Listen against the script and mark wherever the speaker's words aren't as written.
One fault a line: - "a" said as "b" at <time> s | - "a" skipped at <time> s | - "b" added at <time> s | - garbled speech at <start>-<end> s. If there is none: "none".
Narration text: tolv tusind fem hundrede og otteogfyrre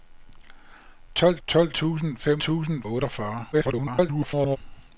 - "tolv" added at 1.5 s
- "hundrede" said as "tusind" at 2.4 s
- garbled speech at 3.5-4.6 s